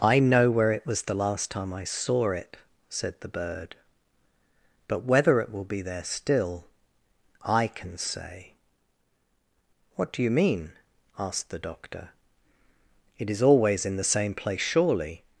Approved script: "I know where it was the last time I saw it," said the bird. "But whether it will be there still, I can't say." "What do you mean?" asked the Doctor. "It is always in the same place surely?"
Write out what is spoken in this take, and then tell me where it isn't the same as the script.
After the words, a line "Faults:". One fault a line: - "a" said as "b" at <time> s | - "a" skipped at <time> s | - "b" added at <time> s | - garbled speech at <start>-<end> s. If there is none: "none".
"I know where it was the last time I saw it," said the bird. "But whether it will be there still, I can say." "What do you mean?" asked the Doctor. "It is always in the same place surely?"
Faults:
- "can't" said as "can" at 7.7 s